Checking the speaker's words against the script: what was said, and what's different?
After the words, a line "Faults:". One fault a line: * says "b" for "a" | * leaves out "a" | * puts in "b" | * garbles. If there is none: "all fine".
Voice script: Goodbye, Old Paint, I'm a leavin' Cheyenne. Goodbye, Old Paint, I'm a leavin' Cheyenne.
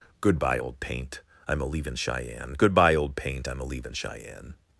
Goodbye, Old Paint, I'm a leavin' Cheyenne. Goodbye, Old Paint, I'm a leavin' Cheyenne.
Faults:
all fine